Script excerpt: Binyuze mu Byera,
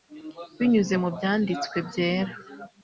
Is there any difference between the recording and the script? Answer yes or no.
yes